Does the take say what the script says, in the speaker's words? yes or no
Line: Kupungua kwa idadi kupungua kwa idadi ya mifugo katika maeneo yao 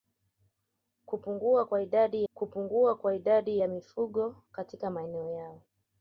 yes